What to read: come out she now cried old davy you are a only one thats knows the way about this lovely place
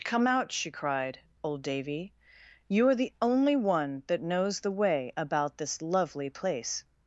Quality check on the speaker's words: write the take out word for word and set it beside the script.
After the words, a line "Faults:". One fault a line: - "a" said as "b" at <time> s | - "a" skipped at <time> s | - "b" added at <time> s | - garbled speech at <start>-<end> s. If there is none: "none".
come out she cried old davy you are the only one that knows the way about this lovely place
Faults:
- "now" skipped at 0.7 s
- "a" said as "the" at 2.9 s
- "thats" said as "that" at 4.1 s